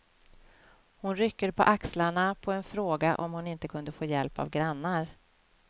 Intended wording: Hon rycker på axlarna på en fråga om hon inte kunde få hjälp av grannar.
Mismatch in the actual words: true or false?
false